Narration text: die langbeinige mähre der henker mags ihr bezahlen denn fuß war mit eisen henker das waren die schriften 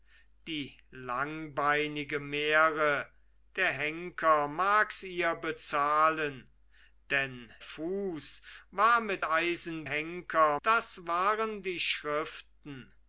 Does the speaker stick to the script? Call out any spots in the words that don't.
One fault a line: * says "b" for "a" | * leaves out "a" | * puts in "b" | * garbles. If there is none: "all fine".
all fine